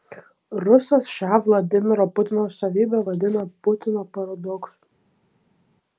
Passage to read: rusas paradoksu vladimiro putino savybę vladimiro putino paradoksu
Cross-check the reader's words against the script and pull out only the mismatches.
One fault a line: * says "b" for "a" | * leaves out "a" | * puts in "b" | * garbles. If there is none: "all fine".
* says "šią" for "paradoksu"
* says "vadina" for "vladimiro"